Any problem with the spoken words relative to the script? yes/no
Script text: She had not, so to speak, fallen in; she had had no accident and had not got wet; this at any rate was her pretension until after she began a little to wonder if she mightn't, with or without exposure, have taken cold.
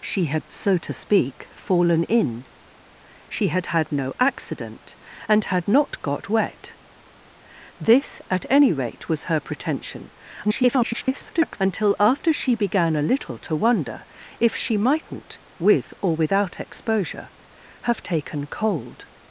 yes